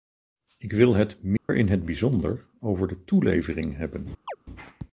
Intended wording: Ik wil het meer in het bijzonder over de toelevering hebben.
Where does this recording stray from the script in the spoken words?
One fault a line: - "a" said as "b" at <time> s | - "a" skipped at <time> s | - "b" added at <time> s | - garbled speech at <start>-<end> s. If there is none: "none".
none